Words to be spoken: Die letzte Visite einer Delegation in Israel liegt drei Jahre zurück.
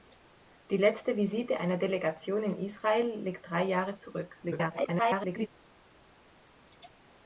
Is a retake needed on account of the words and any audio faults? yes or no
yes